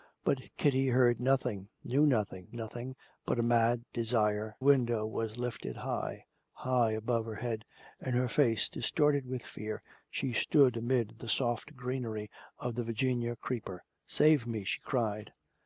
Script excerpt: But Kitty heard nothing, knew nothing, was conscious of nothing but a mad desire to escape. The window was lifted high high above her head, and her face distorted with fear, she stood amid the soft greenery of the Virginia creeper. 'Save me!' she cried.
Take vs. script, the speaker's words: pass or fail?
fail